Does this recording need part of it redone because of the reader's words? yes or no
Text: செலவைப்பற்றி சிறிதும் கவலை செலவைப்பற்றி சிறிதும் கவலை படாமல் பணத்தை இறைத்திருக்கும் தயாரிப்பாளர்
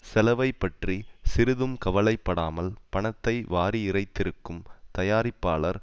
yes